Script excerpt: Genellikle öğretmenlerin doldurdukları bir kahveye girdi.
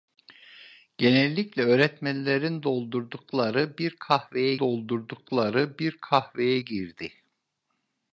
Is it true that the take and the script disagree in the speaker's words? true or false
true